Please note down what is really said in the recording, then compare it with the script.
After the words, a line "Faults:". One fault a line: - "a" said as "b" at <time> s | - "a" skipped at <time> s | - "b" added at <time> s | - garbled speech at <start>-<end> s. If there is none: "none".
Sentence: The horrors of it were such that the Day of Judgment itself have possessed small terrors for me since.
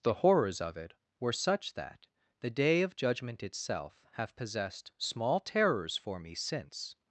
The horrors of it were such that the Day of Judgment itself have possessed small terrors for me since.
Faults:
none